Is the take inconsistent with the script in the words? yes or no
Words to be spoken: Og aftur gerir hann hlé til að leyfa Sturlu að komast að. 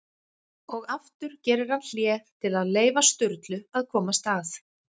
no